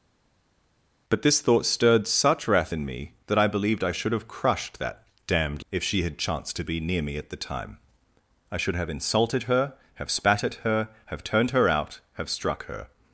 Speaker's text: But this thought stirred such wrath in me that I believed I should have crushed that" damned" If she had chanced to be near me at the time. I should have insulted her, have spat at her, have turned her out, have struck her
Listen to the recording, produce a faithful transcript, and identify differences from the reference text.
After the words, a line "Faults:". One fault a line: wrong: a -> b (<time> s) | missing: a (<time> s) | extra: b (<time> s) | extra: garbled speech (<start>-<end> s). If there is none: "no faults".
But this thought stirred such wrath in me that I believed I should have crushed that" damned" If she had chanced to be near me at the time. I should have insulted her, have spat at her, have turned her out, have struck her
Faults:
no faults